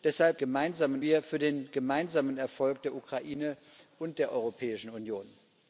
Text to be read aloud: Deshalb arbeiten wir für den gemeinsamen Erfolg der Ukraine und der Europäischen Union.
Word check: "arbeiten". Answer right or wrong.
wrong